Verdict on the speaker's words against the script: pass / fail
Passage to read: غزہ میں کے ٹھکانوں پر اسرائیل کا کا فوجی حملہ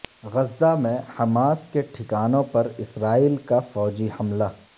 fail